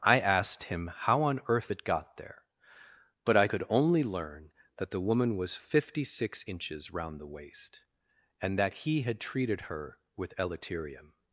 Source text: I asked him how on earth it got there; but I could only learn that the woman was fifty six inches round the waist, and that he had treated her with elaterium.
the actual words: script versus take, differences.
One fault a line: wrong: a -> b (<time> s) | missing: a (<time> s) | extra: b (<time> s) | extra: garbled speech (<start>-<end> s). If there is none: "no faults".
no faults